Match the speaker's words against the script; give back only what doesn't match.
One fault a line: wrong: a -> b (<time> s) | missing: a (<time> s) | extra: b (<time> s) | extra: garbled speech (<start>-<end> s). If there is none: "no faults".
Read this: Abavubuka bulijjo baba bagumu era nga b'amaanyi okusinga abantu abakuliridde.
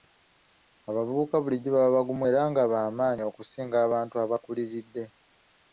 no faults